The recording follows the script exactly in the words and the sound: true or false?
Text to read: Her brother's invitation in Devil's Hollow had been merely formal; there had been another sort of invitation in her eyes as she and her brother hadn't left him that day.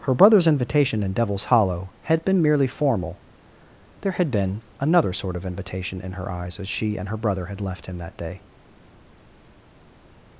false